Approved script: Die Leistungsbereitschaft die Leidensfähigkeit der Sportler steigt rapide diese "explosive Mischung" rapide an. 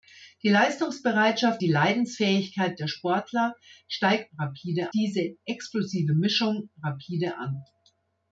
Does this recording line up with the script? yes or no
yes